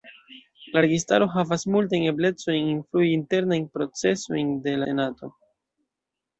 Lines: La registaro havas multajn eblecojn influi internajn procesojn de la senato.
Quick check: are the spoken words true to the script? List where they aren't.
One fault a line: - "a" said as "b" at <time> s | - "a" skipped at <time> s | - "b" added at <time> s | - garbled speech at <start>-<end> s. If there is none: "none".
- "la" skipped at 4.8 s